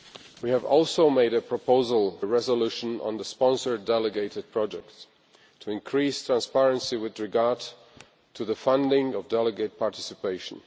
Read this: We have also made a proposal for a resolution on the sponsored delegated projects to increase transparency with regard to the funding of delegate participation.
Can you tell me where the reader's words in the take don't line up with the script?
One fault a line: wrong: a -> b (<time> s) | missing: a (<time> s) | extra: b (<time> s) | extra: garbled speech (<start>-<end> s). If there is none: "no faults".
missing: for (2.2 s)